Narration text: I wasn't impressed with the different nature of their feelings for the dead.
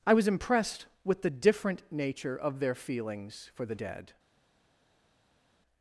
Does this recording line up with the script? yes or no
no